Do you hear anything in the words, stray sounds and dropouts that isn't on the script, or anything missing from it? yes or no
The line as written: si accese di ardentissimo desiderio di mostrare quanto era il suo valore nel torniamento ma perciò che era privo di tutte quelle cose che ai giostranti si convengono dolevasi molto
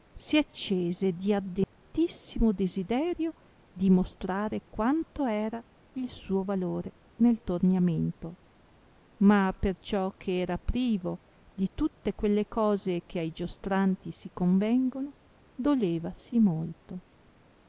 yes